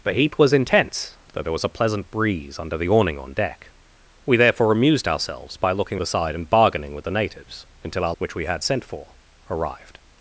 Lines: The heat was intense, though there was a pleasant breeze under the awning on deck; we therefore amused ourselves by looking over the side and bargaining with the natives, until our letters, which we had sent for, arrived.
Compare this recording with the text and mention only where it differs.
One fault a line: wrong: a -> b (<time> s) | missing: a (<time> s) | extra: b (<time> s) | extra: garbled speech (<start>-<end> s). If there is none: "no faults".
missing: over (6.0 s)
missing: letters (8.1 s)